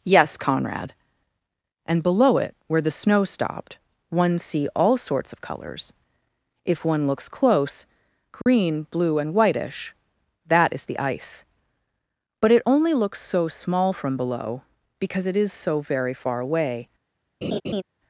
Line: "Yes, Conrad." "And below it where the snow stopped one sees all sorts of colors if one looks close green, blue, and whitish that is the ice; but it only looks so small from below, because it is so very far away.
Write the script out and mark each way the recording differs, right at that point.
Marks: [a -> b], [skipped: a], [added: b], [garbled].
"Yes, Conrad." "And below it where the snow stopped one [sees -> see] all sorts of colors if one looks close green, blue, and whitish that is the ice; but it only looks so small from below, because it is so very far away.